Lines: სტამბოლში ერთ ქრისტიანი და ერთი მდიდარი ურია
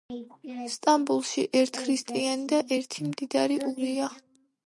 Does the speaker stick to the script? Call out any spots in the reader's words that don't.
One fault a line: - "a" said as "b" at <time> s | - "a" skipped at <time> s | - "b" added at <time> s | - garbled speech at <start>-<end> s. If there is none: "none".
none